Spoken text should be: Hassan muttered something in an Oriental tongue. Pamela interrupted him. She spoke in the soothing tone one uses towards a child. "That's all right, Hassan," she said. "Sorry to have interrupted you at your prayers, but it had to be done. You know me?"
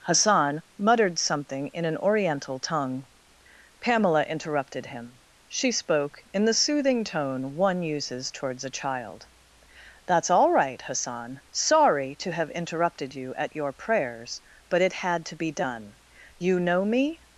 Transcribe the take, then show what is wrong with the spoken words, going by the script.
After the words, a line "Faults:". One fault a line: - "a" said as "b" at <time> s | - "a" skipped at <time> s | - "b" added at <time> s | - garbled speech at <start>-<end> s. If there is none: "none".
Hassan muttered something in an Oriental tongue. Pamela interrupted him. She spoke in the soothing tone one uses towards a child. "That's all right, Hassan. "Sorry to have interrupted you at your prayers, but it had to be done. You know me?"
Faults:
- "she said" skipped at 11.4 s